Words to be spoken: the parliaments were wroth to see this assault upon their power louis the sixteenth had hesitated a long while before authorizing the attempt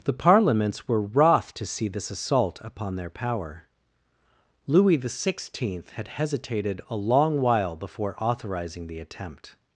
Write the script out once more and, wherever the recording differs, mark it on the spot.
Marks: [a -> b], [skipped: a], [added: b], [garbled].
the parliaments were wroth to see this assault upon their power louis the sixteenth had hesitated a long while before authorizing the attempt